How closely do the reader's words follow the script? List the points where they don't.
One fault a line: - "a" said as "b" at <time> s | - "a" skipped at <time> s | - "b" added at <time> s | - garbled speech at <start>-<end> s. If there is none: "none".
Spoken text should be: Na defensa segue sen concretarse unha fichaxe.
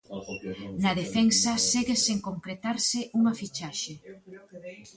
none